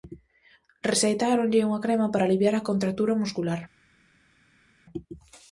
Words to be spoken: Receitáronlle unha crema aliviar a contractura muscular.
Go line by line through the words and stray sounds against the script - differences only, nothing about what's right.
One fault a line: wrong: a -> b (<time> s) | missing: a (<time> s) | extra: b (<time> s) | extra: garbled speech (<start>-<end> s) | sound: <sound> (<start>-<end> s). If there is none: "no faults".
extra: para (2.1 s)